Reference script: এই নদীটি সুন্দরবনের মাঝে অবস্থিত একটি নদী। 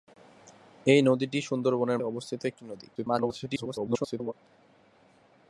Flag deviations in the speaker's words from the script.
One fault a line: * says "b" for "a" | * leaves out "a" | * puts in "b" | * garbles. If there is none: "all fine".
* leaves out "মাঝে"
* garbles